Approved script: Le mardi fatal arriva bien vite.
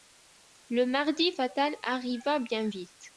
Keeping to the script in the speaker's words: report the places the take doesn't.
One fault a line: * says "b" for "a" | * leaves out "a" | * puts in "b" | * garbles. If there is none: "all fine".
all fine